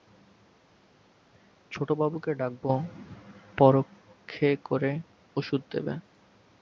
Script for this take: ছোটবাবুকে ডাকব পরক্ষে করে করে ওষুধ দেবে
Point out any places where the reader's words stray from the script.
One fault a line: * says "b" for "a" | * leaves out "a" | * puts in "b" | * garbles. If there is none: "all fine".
* leaves out "করে"